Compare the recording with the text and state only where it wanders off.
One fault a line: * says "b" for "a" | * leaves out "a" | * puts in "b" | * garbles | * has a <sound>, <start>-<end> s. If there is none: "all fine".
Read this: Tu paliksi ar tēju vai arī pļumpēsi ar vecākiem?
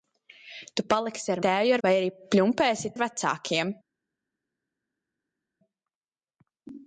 all fine